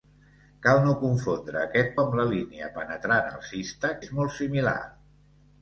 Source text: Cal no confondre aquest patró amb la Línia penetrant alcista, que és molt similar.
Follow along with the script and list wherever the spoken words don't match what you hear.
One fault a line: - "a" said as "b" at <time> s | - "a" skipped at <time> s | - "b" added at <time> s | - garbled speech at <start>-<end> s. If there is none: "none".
- "patró" skipped at 1.9 s
- "que" skipped at 3.9 s